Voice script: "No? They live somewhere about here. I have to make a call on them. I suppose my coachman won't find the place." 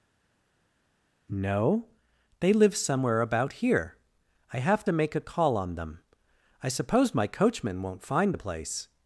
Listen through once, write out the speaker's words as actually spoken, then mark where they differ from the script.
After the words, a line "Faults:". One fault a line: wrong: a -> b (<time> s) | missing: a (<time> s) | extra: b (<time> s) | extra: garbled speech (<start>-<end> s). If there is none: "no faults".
"No? They live somewhere about here. I have to make a call on them. I suppose my coachman won't find the place."
Faults:
no faults